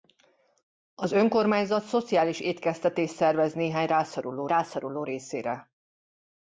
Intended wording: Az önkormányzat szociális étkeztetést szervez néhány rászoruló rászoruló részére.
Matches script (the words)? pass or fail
pass